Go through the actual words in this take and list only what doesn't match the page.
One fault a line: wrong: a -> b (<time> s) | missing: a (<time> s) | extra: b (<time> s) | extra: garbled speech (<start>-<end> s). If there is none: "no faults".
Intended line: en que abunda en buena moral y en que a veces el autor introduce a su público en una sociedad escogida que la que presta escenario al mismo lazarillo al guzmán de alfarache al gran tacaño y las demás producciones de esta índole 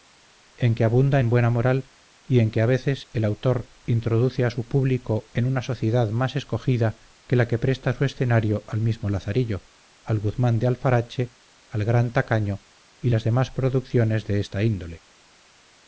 extra: más (6.1 s)
extra: su (7.9 s)